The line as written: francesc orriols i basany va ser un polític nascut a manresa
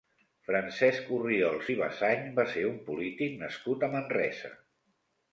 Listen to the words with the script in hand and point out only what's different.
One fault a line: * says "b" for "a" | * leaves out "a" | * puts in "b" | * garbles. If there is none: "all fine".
all fine